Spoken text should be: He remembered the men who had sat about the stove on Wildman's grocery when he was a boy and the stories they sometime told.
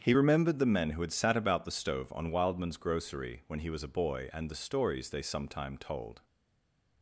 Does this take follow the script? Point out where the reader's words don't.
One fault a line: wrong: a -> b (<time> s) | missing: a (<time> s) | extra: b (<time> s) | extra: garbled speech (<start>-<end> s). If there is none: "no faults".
no faults